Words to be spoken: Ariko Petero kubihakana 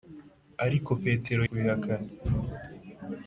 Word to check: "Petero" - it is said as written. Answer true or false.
true